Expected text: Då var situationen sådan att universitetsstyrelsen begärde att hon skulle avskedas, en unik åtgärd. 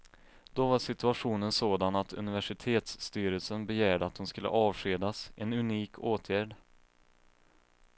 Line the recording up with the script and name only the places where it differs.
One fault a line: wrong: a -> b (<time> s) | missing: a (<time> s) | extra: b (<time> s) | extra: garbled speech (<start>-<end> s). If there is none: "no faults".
no faults